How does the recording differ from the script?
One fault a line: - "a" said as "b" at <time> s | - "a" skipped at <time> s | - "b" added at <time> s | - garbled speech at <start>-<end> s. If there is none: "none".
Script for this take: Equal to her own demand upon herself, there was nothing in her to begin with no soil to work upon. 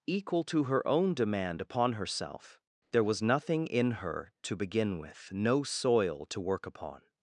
none